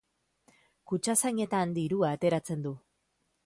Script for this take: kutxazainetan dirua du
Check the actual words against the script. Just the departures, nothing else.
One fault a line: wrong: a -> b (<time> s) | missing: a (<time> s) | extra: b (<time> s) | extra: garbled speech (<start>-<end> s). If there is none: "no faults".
extra: ateratzen (2.2 s)